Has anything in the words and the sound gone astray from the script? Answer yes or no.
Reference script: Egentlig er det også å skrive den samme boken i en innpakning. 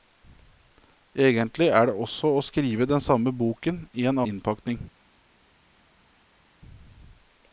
no